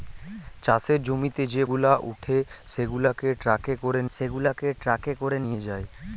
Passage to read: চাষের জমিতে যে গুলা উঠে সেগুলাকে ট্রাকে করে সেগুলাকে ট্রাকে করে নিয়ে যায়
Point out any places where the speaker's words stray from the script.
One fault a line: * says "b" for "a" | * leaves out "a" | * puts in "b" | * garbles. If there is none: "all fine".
all fine